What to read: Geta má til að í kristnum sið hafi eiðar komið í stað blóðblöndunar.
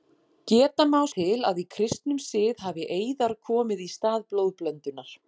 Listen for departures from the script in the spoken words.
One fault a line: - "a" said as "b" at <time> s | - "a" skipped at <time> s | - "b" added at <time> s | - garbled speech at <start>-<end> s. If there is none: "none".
none